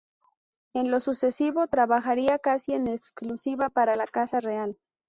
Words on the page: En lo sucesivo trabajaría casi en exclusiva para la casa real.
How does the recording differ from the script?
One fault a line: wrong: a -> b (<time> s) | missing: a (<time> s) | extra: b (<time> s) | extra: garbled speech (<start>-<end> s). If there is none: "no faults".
no faults